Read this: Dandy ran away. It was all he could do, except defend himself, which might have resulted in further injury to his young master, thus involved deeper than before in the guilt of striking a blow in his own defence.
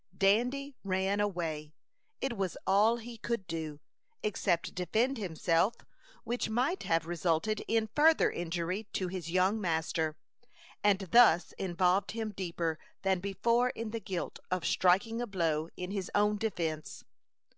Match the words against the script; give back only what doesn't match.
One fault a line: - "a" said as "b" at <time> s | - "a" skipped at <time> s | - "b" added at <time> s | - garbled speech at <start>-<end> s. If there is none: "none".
- "and" added at 10.8 s
- "him" added at 12.1 s